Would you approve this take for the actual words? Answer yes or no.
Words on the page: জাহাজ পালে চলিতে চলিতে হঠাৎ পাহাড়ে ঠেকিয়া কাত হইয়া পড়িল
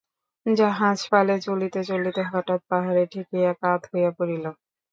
yes